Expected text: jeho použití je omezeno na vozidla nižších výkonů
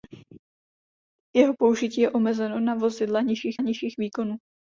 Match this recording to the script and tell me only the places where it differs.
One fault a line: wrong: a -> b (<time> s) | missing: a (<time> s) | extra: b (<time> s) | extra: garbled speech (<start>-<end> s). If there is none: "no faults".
extra: nižších (3.6 s)